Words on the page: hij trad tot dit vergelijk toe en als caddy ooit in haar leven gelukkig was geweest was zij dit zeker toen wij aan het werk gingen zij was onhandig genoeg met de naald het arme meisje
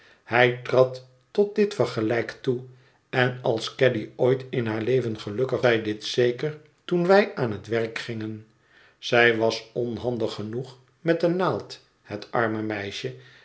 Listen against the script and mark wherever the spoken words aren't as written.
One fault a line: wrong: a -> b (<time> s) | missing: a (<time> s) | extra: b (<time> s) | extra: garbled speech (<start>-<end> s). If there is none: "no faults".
missing: was geweest was (5.6 s)